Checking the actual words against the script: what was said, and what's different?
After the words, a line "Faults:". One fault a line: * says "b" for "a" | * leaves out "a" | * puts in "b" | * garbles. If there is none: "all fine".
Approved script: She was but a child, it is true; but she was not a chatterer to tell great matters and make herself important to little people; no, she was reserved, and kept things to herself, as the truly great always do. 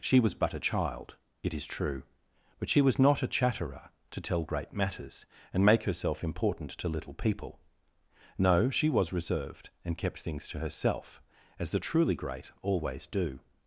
She was but a child, it is true; but she was not a chatterer to tell great matters and make herself important to little people; no, she was reserved, and kept things to herself, as the truly great always do.
Faults:
all fine